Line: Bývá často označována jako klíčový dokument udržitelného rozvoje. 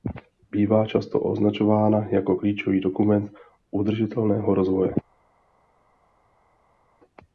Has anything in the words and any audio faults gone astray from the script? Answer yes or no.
no